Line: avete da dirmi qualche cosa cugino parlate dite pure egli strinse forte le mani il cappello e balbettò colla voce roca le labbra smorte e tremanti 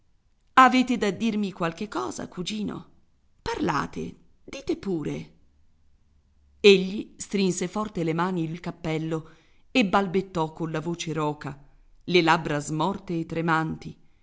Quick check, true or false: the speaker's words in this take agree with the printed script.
true